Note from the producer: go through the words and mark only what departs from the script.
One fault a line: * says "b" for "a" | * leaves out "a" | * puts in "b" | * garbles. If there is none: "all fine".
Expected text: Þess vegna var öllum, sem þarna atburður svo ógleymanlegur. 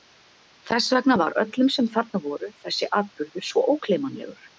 * puts in "voru þessi"